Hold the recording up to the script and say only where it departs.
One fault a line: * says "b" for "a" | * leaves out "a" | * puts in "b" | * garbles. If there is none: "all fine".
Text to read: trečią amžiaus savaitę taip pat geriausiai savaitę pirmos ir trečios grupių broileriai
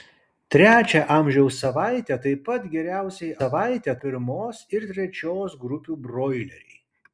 all fine